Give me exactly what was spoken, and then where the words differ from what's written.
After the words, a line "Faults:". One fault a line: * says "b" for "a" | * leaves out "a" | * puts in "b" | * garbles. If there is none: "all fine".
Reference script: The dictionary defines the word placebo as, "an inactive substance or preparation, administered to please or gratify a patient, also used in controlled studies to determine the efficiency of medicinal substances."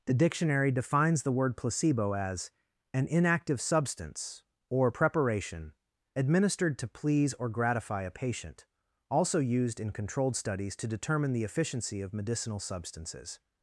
The dictionary defines the word placebo as, "an inactive substance or preparation, administered to please or gratify a patient, also used in controlled studies to determine the efficiency of medicinal substances."
Faults:
all fine